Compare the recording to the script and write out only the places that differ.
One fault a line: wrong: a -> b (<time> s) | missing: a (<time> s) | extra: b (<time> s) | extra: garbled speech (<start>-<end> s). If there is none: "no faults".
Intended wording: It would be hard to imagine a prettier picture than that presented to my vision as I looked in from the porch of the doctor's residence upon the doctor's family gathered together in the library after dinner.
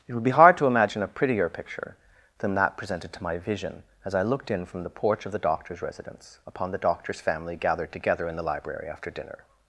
no faults